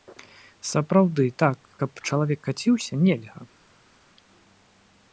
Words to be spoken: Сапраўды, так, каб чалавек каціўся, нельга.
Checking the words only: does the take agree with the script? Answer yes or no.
yes